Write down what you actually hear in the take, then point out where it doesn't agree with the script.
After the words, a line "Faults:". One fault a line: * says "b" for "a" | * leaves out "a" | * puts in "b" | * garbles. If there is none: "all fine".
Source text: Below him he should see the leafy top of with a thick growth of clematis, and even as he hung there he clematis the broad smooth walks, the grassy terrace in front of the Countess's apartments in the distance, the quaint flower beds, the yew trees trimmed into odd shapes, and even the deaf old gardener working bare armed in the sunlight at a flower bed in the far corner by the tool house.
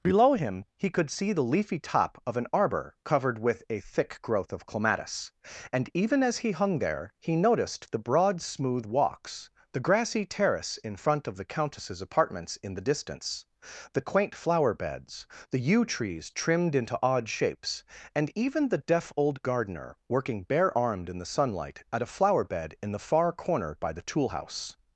Below him he could see the leafy top of an arbor covered with a thick growth of clematis, and even as he hung there he noticed the broad smooth walks, the grassy terrace in front of the Countess's apartments in the distance, the quaint flower beds, the yew trees trimmed into odd shapes, and even the deaf old gardener working bare armed in the sunlight at a flower bed in the far corner by the tool house.
Faults:
* says "could" for "should"
* puts in "an arbor covered"
* says "noticed" for "clematis"